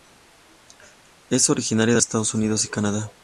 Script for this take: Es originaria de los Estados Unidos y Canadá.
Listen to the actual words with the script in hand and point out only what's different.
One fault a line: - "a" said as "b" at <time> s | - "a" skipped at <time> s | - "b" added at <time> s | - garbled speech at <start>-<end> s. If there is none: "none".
- "los" skipped at 2.0 s